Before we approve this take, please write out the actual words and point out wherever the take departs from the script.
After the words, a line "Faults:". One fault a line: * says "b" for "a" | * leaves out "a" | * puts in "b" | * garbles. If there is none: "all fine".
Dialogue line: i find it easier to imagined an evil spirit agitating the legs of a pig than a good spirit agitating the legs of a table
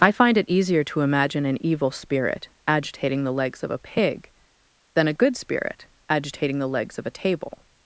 i find it easier to imagine an evil spirit agitating the legs of a pig than a good spirit agitating the legs of a table
Faults:
* says "imagine" for "imagined"